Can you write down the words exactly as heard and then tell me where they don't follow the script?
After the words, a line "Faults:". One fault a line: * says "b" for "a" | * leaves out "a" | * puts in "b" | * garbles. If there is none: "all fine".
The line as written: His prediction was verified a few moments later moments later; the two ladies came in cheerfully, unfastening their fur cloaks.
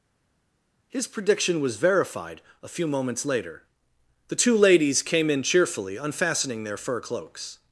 His prediction was verified a few moments later; the two ladies came in cheerfully, unfastening their fur cloaks.
Faults:
* leaves out "moments later"